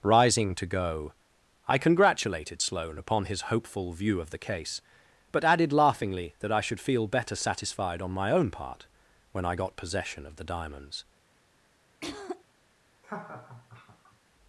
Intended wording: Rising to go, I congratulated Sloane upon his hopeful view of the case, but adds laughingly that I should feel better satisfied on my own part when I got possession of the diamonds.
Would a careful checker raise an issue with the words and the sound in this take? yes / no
yes